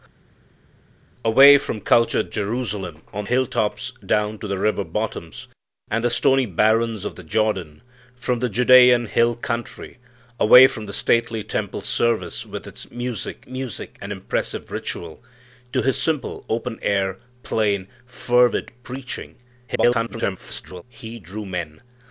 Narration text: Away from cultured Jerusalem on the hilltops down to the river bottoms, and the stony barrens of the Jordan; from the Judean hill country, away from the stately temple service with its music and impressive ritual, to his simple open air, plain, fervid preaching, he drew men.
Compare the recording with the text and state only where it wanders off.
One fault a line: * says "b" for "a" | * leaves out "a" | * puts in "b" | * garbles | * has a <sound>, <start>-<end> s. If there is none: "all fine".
* leaves out "the"
* puts in "music"
* garbles